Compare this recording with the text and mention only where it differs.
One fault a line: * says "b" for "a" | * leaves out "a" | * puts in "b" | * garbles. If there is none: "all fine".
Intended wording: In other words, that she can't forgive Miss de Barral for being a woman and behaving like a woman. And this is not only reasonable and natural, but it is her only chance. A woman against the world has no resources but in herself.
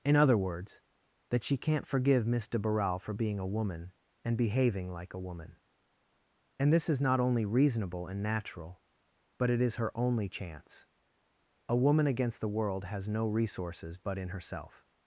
all fine